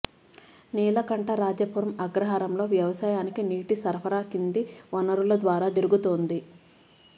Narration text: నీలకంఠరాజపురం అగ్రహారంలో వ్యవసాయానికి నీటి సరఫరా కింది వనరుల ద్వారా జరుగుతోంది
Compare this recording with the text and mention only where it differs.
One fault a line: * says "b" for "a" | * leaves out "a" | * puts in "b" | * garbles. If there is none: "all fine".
all fine